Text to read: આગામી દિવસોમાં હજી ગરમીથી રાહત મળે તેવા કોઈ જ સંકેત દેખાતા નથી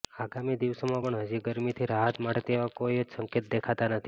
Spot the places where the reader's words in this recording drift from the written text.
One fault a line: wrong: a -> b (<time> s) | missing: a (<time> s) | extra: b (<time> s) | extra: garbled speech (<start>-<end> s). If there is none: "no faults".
extra: પણ (1.0 s)